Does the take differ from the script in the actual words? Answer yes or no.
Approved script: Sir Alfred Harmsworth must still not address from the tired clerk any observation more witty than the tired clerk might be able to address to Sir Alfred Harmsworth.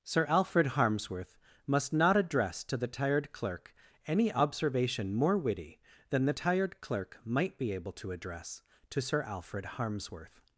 yes